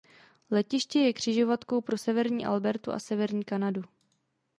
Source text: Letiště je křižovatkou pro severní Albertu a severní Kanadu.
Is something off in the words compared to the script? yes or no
no